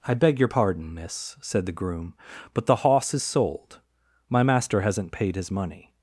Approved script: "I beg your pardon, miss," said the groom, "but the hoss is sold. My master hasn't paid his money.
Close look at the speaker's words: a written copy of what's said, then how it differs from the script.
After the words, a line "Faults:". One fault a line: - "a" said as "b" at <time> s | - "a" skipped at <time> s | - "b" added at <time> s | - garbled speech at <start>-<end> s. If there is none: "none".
"I beg your pardon, miss," said the groom, "but the hoss is sold. My master hasn't paid his money.
Faults:
none